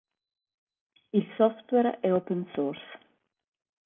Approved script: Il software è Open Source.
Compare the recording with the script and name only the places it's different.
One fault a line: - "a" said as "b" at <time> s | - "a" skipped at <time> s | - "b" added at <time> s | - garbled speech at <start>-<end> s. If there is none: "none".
none